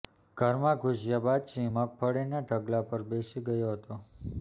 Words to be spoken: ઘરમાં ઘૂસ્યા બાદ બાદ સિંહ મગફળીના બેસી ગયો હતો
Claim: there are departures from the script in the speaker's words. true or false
true